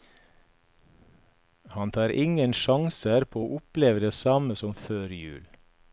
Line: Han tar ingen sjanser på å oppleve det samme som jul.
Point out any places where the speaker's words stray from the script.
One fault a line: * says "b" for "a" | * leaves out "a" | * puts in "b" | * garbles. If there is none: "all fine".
* puts in "før"